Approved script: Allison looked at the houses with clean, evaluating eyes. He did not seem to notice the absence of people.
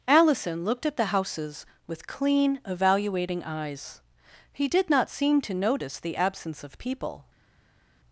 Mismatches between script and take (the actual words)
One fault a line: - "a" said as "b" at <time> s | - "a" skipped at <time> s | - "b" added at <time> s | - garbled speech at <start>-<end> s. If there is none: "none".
none